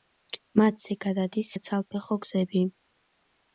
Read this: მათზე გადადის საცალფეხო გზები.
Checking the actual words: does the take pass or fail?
pass